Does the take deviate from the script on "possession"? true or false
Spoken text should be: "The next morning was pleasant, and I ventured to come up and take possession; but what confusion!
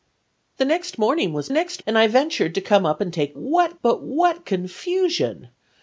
true